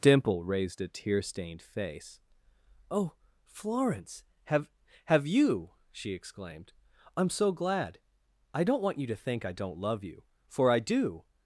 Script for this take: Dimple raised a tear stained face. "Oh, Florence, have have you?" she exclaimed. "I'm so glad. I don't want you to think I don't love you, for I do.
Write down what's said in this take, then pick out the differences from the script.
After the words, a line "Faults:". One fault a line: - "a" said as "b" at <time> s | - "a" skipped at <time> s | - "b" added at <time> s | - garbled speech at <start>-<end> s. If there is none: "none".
Dimple raised a tear stained face. "Oh, Florence, have have you?" she exclaimed. "I'm so glad. I don't want you to think I don't love you, for I do.
Faults:
none